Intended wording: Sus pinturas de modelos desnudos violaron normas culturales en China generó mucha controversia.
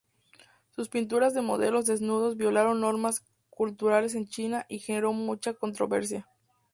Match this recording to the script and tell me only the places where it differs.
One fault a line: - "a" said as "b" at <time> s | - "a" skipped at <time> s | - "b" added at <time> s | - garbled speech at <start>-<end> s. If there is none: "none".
- "y" added at 4.7 s